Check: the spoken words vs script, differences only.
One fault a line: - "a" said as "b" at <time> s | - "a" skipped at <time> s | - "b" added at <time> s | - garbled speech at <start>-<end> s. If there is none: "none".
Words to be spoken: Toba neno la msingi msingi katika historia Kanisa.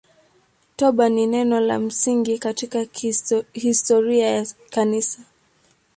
- "ni" added at 1.1 s
- "msingi" skipped at 2.4 s
- "ya" added at 4.3 s